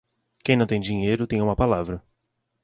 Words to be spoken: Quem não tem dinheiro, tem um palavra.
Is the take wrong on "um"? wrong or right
wrong